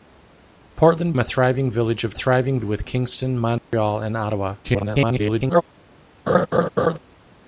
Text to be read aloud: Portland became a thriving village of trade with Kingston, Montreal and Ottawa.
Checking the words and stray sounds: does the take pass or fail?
fail